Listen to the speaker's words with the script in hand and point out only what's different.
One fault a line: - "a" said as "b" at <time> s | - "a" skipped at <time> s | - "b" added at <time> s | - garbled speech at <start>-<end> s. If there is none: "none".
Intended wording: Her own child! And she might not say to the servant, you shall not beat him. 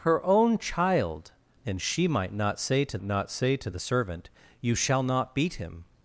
- "not say to" added at 3.0 s